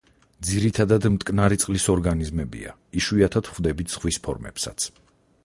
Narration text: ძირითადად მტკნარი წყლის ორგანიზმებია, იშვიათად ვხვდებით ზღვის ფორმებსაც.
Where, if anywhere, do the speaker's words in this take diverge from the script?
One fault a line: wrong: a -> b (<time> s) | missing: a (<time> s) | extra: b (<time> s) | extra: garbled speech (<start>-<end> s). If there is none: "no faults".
no faults